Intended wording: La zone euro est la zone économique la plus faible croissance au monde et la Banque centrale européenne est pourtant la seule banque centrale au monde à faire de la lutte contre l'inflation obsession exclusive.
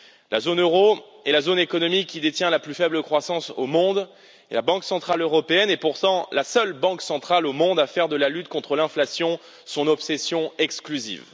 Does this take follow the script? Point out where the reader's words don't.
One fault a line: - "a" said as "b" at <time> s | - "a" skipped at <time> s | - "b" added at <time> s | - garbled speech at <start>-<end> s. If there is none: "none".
- "qui détient" added at 2.1 s
- "son" added at 9.6 s